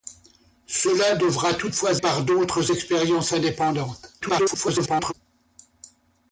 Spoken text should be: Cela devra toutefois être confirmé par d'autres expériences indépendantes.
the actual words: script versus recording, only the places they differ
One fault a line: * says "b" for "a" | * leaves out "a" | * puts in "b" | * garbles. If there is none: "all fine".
* leaves out "être confirmé"
* garbles